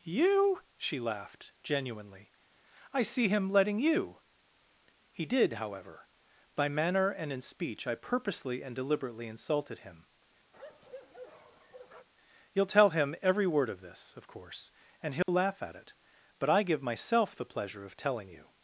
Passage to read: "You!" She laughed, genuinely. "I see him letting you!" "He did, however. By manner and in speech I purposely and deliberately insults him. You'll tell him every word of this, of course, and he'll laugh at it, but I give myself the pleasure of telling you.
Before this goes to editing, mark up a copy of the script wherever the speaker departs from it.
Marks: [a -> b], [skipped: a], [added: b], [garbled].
"You!" She laughed, genuinely. "I see him letting you!" "He did, however. By manner and in speech I purposely and deliberately [insults -> insulted] him. You'll tell him every word of this, of course, and he'll laugh at it, but I give myself the pleasure of telling you.